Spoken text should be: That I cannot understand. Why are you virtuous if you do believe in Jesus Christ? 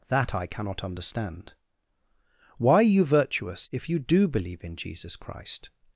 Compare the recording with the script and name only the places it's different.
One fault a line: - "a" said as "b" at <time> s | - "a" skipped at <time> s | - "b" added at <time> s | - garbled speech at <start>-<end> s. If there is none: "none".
none